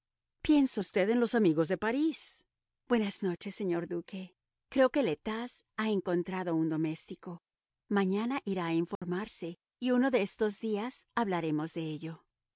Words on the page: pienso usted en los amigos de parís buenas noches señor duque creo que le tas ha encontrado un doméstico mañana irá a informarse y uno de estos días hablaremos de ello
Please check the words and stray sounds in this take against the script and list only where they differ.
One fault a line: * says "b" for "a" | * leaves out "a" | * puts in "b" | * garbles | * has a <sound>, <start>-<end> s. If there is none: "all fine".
* has a dropout, 9.0-9.0 s